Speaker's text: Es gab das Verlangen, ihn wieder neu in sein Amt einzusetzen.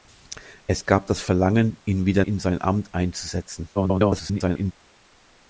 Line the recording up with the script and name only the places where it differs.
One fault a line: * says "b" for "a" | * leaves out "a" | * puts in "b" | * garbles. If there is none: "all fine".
* leaves out "neu"
* garbles